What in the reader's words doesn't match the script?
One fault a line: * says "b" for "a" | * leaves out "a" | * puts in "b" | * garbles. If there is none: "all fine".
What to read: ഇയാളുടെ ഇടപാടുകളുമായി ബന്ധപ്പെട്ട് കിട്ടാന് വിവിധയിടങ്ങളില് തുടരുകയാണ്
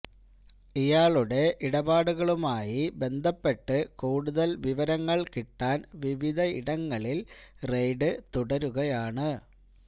* puts in "കൂടുതല് വിവരങ്ങള്"
* puts in "റെയ്ഡ്"